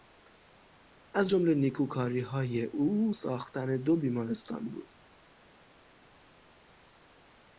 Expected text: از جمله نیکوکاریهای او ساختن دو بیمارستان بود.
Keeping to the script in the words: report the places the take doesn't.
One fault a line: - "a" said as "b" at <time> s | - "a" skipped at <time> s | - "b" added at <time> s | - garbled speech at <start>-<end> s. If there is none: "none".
none